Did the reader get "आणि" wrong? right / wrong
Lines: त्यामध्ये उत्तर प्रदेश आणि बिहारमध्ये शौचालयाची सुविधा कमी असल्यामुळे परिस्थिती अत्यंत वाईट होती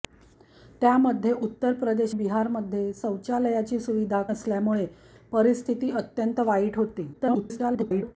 wrong